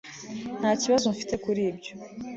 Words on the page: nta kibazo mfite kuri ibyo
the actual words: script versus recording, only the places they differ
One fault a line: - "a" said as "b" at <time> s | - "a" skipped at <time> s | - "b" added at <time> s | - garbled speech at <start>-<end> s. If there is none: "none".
none